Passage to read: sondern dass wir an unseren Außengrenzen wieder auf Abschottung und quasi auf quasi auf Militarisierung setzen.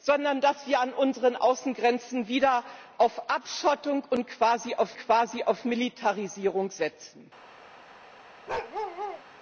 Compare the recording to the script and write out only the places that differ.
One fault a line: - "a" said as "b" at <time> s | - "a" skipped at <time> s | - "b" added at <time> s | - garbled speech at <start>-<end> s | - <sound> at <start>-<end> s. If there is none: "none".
- bark at 8.5-9.2 s